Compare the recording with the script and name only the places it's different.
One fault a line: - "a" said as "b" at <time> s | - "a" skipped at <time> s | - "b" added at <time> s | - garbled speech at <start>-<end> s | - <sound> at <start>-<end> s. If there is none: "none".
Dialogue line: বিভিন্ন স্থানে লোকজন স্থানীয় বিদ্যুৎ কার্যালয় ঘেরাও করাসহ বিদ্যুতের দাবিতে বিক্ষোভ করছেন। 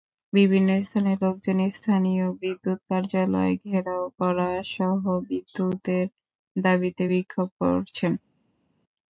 none